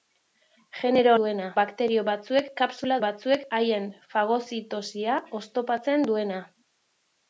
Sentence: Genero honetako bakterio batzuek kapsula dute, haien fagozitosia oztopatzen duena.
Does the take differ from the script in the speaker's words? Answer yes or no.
yes